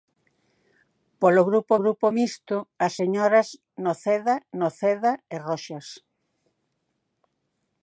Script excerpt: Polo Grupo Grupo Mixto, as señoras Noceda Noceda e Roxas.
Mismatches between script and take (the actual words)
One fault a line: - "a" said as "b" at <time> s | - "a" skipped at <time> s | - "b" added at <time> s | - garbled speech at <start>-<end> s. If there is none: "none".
none